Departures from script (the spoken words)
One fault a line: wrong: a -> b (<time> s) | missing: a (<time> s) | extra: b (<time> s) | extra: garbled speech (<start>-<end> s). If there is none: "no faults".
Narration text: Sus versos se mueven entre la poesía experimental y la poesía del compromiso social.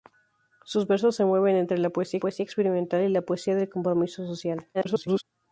extra: poesía (2.2 s)
extra: garbled speech (4.7-5.2 s)